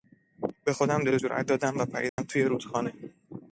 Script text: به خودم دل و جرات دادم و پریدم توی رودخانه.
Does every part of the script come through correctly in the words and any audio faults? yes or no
no